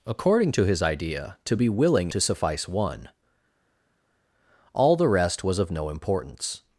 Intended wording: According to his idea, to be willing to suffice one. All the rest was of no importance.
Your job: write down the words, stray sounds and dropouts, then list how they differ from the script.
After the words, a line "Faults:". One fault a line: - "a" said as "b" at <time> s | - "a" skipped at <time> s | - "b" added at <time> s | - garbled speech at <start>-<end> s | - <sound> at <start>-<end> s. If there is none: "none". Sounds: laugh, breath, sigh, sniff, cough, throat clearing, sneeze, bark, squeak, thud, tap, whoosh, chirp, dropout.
According to his idea, to be willing to suffice one. All the rest was of no importance.
Faults:
none